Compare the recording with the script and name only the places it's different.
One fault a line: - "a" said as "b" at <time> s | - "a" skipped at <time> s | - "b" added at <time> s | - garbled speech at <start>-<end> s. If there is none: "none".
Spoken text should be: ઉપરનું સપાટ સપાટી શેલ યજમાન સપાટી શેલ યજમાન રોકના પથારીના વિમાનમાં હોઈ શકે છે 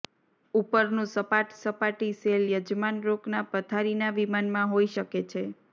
- "સપાટી શેલ યજમાન" skipped at 3.0 s